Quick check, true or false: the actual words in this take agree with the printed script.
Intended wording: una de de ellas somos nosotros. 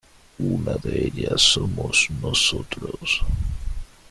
false